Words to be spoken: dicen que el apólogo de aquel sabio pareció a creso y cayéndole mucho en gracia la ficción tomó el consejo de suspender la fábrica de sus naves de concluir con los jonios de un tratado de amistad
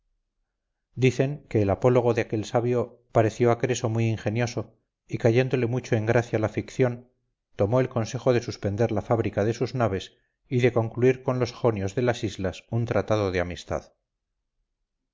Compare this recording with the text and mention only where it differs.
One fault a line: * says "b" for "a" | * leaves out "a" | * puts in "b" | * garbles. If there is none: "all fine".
* puts in "muy ingenioso"
* puts in "y"
* puts in "las islas"